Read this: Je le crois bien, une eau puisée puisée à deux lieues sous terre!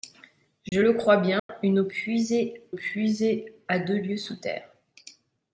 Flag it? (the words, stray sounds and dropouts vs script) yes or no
yes